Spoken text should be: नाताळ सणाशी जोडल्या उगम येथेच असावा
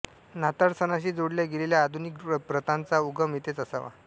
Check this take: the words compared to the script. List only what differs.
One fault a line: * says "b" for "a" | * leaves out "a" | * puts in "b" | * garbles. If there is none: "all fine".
* puts in "गेलेल्या आधुनिक प्रथांचा"